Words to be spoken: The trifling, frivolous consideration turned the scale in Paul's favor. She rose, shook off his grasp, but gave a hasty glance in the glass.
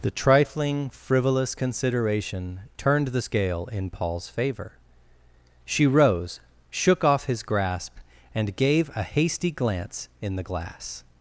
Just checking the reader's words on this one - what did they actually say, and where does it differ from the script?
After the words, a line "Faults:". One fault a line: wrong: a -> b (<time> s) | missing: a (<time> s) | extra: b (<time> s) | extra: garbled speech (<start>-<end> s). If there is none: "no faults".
The trifling, frivolous consideration turned the scale in Paul's favor. She rose, shook off his grasp, and gave a hasty glance in the glass.
Faults:
wrong: but -> and (8.3 s)